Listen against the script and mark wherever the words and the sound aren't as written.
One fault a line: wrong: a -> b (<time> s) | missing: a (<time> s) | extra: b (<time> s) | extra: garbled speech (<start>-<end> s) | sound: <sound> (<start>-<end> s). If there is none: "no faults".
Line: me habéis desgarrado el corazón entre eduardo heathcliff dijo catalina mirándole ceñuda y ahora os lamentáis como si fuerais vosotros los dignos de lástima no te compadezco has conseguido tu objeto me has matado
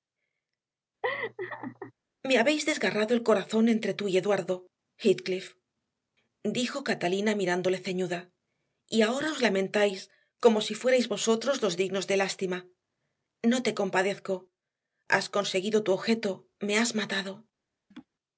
sound: laugh (1.0-1.9 s)
extra: tú y (3.9 s)
sound: laugh (17.9-18.1 s)